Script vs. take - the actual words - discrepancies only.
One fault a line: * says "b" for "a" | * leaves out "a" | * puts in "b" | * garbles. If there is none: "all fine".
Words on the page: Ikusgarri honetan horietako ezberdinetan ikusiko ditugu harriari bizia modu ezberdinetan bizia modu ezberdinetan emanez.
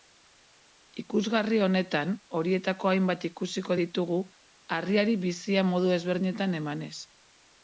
* says "hainbat" for "ezberdinetan"
* leaves out "bizia modu ezberdinetan"